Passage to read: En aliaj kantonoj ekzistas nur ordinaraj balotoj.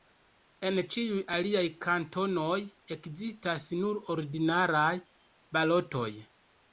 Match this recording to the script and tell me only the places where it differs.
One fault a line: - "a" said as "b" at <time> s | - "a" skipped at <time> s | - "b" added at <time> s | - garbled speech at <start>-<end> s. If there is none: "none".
- "ĉiuj" added at 0.9 s